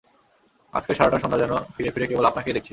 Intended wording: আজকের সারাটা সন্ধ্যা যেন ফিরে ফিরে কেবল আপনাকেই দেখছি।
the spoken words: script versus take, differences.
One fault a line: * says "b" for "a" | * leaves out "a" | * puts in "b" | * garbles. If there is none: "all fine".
all fine